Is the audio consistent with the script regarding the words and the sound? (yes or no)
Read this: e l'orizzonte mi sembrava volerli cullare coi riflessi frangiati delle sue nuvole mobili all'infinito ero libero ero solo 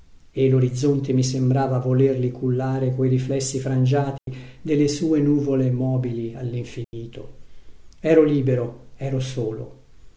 no